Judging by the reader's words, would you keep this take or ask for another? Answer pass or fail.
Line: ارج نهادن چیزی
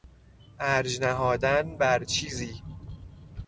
fail